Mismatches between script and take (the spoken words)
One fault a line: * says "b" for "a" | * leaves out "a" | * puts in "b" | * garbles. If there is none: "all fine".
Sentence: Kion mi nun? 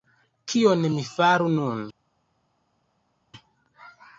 * puts in "faru"